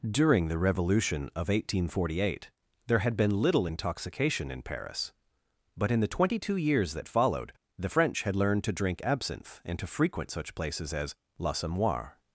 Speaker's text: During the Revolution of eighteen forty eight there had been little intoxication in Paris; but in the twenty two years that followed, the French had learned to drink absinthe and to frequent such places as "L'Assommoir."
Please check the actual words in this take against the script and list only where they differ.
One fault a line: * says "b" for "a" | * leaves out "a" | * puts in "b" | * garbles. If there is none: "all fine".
all fine